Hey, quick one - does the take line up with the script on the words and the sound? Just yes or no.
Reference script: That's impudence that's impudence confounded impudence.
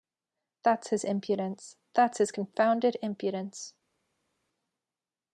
no